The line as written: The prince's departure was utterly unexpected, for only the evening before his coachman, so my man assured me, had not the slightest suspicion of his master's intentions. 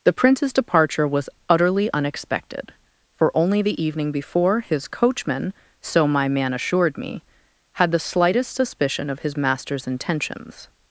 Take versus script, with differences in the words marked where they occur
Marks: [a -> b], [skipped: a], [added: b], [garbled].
The prince's departure was utterly unexpected, for only the evening before his coachman, so my man assured me, had [skipped: not] the slightest suspicion of his master's intentions.